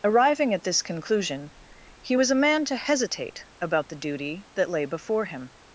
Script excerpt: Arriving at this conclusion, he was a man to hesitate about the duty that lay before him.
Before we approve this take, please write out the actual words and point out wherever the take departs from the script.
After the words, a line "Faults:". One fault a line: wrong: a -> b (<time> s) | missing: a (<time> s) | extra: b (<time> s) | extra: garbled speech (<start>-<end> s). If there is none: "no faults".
Arriving at this conclusion, he was a man to hesitate about the duty that lay before him.
Faults:
no faults